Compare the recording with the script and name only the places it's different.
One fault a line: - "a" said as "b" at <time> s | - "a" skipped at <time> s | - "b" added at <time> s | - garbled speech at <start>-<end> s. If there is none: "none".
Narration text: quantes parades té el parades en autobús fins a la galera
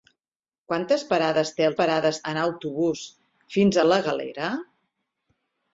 none